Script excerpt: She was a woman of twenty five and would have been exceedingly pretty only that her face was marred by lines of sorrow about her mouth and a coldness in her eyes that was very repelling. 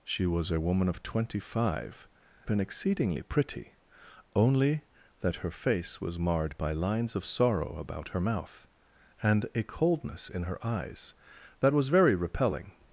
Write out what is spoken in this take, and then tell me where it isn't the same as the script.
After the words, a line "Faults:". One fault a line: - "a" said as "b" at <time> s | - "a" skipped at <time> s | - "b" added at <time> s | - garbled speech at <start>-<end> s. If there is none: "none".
She was a woman of twenty five been exceedingly pretty only that her face was marred by lines of sorrow about her mouth and a coldness in her eyes that was very repelling.
Faults:
- "and would have" skipped at 2.1 s